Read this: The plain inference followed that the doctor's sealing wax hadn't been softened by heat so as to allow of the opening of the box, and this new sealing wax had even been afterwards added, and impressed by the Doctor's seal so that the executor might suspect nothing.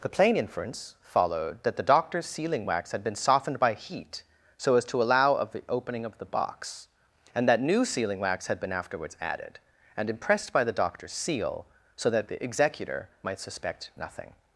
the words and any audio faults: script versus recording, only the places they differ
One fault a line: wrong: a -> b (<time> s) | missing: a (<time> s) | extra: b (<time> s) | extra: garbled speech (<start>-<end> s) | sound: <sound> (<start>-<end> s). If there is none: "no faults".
wrong: hadn't -> had (2.9 s)
wrong: this -> that (7.5 s)
missing: even (8.6 s)